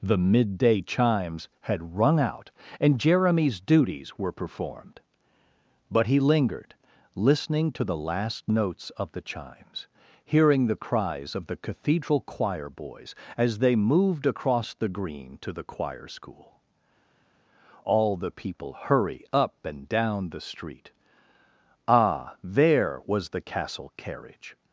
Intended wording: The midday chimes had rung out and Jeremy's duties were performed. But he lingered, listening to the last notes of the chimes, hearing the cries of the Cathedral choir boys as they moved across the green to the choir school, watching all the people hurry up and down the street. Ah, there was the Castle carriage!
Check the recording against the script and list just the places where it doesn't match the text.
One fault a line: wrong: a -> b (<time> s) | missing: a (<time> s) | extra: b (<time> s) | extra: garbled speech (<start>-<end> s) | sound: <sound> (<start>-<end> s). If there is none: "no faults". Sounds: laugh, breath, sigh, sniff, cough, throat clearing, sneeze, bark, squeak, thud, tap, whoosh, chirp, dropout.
missing: watching (16.6 s)